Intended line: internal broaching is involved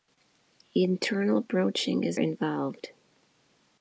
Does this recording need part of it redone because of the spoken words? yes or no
no